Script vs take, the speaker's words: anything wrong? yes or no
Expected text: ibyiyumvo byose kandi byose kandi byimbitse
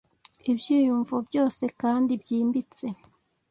yes